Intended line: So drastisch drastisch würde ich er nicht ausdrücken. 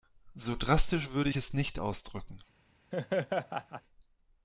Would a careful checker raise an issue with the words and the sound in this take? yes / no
yes